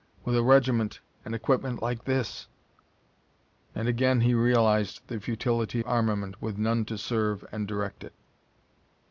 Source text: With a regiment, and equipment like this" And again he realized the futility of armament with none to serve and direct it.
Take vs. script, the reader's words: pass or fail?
fail